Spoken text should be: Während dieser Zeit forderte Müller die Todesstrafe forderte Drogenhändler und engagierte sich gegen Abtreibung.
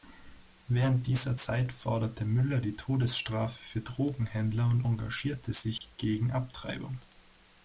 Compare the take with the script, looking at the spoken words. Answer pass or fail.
fail